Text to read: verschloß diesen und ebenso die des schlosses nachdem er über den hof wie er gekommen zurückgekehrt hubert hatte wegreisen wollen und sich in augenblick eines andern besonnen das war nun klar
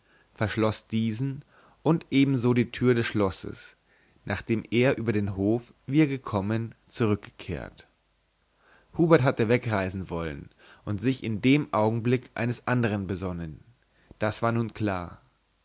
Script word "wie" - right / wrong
right